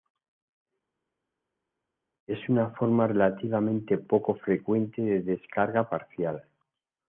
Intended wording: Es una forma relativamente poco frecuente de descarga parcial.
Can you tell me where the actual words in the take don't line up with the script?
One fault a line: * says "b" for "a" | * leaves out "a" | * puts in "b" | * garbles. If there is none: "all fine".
all fine